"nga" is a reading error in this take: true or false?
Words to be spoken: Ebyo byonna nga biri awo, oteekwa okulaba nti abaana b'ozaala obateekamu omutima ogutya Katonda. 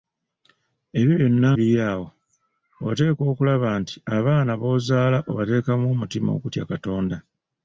true